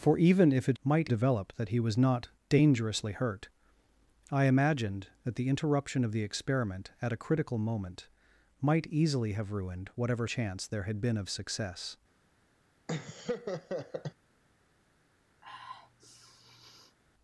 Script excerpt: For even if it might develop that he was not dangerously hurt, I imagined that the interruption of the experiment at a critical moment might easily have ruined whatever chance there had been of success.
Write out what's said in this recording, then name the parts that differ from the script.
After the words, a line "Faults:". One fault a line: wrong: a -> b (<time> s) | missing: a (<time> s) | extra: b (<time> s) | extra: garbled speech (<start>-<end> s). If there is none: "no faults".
For even if it might develop that he was not dangerously hurt, I imagined that the interruption of the experiment at a critical moment might easily have ruined whatever chance there had been of success.
Faults:
no faults